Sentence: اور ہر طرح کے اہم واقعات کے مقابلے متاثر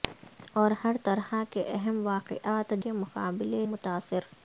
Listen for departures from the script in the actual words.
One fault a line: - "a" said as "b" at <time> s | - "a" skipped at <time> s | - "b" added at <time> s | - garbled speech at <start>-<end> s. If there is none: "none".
none